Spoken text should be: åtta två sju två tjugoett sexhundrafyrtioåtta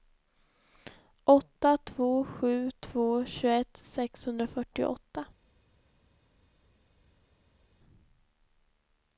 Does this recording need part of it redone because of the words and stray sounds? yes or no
no